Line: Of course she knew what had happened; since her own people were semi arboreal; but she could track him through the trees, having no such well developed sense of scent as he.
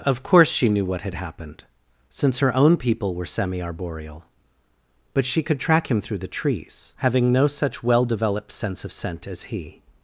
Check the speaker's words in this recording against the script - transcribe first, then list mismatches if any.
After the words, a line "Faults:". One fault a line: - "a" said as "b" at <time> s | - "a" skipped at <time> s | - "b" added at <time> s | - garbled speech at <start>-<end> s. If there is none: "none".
Of course she knew what had happened; since her own people were semi arboreal; but she could track him through the trees, having no such well developed sense of scent as he.
Faults:
none